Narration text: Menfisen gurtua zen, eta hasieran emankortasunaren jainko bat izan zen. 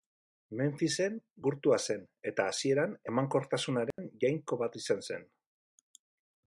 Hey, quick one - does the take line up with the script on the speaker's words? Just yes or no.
yes